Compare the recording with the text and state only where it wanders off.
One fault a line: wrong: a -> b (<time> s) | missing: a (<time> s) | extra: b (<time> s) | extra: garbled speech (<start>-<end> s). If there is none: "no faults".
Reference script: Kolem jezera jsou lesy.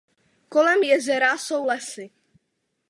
no faults